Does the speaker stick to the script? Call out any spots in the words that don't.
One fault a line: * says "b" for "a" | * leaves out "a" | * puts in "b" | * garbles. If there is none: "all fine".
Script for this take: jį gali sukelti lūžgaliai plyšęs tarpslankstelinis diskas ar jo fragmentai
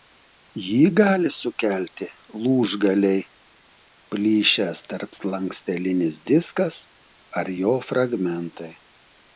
all fine